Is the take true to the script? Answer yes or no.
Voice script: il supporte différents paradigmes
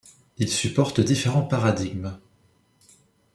yes